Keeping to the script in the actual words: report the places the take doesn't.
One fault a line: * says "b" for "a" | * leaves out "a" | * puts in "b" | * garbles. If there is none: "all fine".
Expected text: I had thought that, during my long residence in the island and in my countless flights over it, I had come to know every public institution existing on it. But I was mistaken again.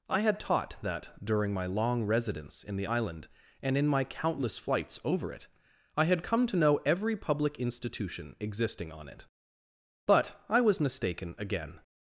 * says "taught" for "thought"